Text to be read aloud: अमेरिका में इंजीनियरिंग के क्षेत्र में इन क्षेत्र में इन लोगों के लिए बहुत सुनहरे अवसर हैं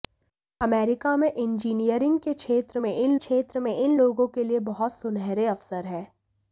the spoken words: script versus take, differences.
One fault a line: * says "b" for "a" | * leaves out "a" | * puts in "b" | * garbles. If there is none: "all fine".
all fine